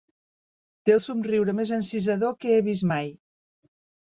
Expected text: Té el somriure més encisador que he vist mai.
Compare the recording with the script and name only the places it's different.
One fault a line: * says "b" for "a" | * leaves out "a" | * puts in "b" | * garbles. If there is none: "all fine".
all fine